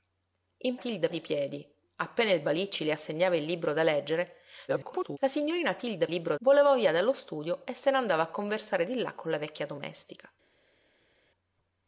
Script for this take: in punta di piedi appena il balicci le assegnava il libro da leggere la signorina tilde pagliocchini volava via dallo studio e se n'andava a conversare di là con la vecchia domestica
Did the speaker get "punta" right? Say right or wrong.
wrong